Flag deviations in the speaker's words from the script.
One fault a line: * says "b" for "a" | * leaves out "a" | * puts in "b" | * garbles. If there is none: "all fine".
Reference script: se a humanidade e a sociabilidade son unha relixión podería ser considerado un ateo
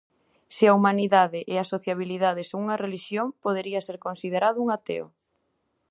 all fine